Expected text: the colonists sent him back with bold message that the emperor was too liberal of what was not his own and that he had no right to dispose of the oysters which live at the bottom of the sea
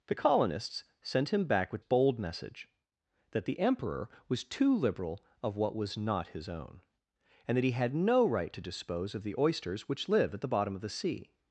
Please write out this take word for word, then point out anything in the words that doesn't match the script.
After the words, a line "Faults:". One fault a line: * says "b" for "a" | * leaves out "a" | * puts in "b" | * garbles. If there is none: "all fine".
the colonists sent him back with bold message that the emperor was too liberal of what was not his own and that he had no right to dispose of the oysters which live at the bottom of the sea
Faults:
all fine